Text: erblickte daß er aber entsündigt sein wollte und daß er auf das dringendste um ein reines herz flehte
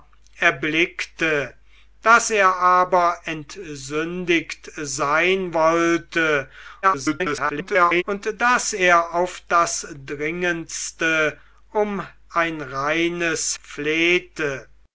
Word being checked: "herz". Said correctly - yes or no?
no